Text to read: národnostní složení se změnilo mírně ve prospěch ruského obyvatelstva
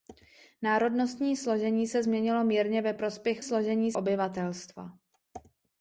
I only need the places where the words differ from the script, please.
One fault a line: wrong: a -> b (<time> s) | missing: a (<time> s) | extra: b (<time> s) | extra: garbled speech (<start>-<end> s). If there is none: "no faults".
wrong: ruského -> složení (3.4 s)